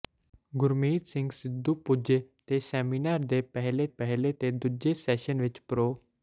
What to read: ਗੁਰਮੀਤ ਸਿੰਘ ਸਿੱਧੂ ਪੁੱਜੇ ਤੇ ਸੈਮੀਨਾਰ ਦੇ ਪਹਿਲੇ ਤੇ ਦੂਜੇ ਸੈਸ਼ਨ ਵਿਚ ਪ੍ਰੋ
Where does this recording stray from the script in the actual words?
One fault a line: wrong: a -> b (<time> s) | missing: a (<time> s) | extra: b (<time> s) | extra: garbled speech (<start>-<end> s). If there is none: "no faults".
extra: ਪਹਿਲੇ (3.9 s)